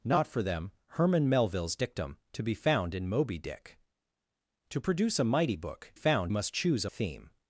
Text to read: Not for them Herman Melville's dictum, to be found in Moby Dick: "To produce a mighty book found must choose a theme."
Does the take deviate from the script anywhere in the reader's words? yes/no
no